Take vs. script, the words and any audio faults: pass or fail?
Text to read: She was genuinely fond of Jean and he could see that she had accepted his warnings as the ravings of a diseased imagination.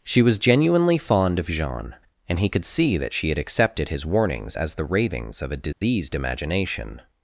fail